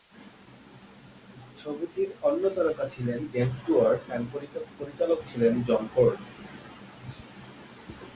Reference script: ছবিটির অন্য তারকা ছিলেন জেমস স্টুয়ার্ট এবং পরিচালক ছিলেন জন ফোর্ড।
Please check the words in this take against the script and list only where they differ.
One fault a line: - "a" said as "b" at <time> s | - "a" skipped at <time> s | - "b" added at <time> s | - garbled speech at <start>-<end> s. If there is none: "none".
none